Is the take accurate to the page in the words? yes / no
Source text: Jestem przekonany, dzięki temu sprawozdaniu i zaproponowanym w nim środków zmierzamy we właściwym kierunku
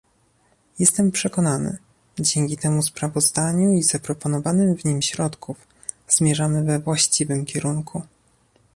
yes